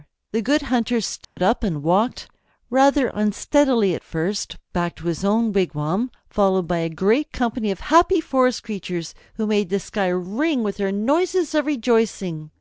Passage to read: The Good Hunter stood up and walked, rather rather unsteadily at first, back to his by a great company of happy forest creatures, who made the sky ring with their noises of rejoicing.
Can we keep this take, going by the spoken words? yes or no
no